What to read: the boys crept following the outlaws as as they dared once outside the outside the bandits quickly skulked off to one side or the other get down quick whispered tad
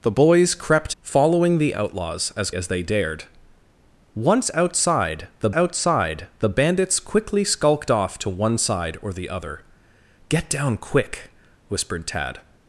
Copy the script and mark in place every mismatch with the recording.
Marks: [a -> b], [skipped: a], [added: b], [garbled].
the boys crept following the outlaws as as they dared once outside the outside the bandits quickly skulked off to one side or the other get down quick whispered tad